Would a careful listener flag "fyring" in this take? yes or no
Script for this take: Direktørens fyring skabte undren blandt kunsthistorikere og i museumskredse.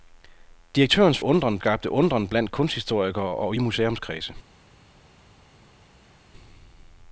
yes